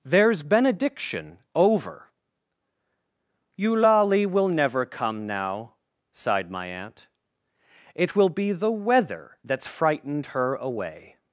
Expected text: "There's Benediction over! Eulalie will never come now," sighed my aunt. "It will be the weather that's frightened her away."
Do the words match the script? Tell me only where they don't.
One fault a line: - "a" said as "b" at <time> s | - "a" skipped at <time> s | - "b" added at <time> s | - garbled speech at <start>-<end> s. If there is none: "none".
none